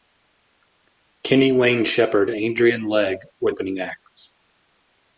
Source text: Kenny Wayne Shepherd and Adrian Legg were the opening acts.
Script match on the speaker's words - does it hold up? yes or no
no